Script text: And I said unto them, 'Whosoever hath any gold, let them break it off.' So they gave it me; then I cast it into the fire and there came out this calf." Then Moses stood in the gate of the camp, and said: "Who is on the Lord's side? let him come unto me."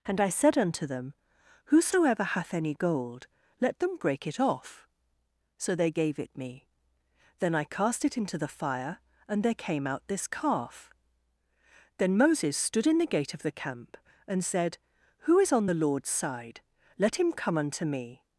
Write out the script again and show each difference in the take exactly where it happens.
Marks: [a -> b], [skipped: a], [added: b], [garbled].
And I said unto them, 'Whosoever hath any gold, let them break it off.' So they gave it me; then I cast it into the fire and there came out this calf." Then Moses stood in the gate of the camp, and said: "Who is on the Lord's side? let him come unto me."